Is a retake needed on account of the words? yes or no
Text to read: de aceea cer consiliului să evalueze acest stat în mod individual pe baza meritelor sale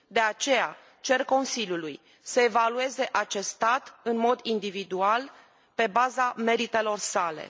no